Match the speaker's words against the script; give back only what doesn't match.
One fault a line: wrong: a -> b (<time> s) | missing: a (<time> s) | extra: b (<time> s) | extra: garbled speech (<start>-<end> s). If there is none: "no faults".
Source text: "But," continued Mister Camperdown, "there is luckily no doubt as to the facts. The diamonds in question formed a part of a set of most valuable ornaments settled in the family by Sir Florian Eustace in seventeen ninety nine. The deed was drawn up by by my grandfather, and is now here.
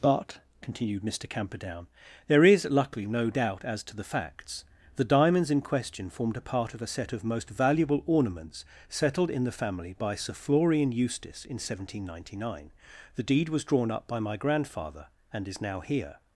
missing: by (14.2 s)